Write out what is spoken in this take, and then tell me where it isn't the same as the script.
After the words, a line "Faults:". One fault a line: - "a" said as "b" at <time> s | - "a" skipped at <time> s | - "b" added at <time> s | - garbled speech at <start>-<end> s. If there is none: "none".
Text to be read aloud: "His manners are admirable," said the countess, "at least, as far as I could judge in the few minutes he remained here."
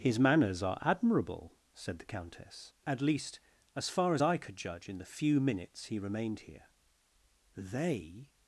"His manners are admirable," said the countess, "at least, as far as I could judge in the few minutes he remained here." "They
Faults:
- "They" added at 7.6 s